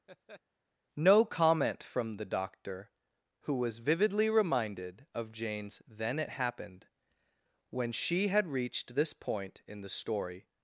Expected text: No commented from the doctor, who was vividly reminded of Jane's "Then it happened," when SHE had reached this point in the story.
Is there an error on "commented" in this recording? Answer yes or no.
yes